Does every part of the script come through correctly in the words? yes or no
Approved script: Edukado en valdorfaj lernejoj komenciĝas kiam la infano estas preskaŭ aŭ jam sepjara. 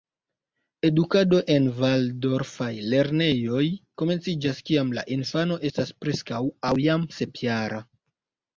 yes